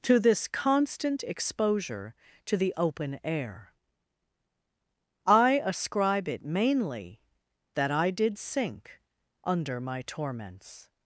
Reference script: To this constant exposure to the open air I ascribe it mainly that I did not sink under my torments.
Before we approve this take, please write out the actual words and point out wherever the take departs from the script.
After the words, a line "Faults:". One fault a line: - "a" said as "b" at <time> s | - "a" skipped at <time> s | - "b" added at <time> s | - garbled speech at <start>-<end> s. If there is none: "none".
To this constant exposure to the open air I ascribe it mainly that I did sink under my torments.
Faults:
- "not" skipped at 8.4 s